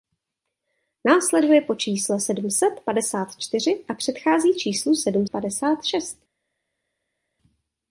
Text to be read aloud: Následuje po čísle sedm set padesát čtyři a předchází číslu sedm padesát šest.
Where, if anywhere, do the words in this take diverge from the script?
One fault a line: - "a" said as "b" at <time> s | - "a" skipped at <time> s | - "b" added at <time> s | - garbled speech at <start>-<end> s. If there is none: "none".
none